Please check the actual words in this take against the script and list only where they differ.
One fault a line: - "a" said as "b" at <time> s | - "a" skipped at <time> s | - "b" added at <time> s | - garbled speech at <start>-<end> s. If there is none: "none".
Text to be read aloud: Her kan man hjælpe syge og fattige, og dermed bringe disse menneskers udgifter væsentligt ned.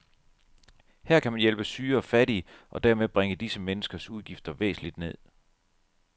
none